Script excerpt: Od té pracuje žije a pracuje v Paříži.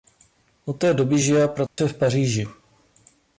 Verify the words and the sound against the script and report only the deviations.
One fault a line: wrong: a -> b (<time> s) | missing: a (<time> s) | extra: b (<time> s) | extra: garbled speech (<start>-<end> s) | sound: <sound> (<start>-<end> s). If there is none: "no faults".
wrong: pracuje -> doby (0.9 s)
sound: dropout (1.7-1.8 s)